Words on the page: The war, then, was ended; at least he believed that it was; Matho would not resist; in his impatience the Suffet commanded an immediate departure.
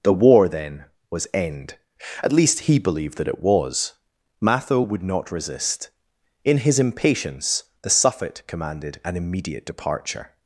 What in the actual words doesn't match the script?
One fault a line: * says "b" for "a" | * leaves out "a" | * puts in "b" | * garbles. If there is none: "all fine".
* says "end" for "ended"